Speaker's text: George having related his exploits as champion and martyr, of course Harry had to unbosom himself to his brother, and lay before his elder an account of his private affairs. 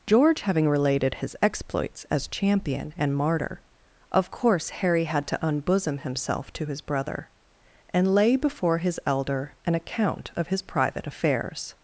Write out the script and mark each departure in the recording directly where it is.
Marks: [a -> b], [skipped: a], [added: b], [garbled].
George having related his exploits as champion and martyr, of course Harry had to unbosom himself to his brother, and lay before his elder an account of his private affairs.